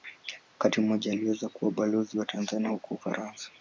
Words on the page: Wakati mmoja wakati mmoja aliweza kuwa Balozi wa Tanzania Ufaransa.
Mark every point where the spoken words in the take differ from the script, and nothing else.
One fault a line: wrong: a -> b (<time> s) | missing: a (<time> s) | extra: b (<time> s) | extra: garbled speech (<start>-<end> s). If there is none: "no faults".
missing: wakati mmoja (1.1 s)
extra: huko (2.7 s)